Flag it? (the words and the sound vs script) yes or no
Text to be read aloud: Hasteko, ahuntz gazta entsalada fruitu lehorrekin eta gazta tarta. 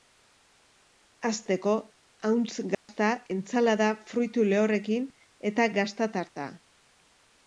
yes